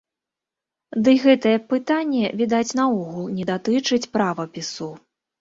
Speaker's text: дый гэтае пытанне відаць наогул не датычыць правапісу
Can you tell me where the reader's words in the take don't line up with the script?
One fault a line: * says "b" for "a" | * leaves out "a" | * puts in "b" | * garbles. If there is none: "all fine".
all fine